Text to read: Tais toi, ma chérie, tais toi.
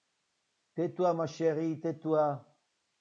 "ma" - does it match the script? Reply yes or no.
yes